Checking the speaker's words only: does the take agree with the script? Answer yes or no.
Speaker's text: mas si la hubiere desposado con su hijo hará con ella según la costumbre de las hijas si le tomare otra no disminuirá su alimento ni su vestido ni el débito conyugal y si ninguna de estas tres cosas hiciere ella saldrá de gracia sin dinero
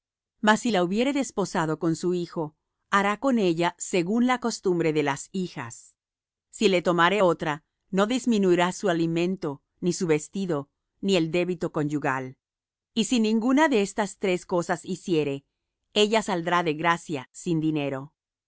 yes